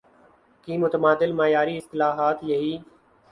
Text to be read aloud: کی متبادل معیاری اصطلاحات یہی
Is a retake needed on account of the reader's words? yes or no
no